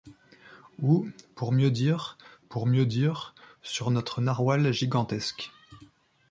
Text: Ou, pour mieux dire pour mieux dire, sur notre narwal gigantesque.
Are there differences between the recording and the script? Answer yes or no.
no